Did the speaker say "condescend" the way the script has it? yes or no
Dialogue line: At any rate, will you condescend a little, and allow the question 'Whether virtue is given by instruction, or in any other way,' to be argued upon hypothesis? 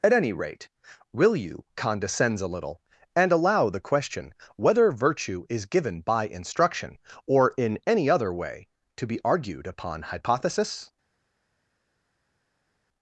no